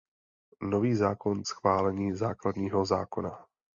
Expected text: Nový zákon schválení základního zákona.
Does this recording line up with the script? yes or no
yes